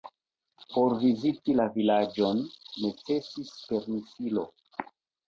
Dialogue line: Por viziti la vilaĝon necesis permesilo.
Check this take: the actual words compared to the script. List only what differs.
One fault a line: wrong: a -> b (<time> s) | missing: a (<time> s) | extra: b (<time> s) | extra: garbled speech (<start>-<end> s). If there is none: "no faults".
no faults